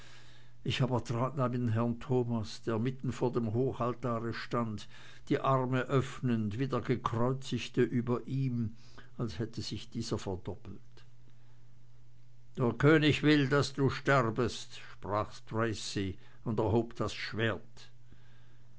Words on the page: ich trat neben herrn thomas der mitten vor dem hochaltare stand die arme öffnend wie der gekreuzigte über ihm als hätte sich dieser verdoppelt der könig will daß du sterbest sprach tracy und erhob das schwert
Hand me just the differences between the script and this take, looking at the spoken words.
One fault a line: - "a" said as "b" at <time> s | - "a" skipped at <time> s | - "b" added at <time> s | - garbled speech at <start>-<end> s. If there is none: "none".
- "aber" added at 0.8 s